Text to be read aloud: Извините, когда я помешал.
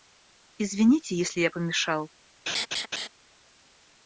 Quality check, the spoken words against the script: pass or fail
fail